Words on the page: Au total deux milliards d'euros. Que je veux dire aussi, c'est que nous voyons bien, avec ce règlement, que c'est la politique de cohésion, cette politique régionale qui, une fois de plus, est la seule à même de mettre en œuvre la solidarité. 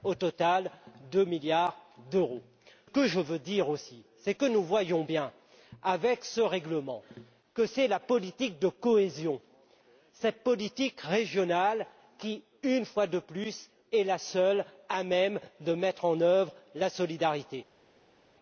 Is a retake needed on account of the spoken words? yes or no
no